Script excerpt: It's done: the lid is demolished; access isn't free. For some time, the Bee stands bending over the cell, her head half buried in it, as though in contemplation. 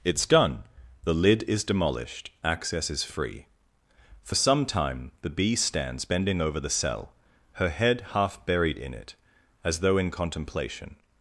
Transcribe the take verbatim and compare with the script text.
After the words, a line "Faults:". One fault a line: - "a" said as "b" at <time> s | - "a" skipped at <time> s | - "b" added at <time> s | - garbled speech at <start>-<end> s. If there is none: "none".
It's done: the lid is demolished; access is free. For some time, the Bee stands bending over the cell, her head half buried in it, as though in contemplation.
Faults:
- "isn't" said as "is" at 2.9 s